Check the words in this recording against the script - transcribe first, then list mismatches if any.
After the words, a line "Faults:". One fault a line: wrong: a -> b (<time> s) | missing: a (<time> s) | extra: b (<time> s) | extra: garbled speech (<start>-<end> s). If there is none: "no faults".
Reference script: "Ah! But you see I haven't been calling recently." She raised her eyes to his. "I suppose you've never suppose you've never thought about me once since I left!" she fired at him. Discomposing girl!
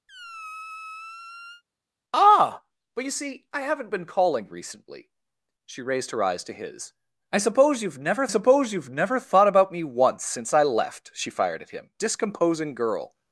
"Ah! But you see I haven't been calling recently." She raised her eyes to his. "I suppose you've never suppose you've never thought about me once since I left!" she fired at him. Discomposing girl!
Faults:
no faults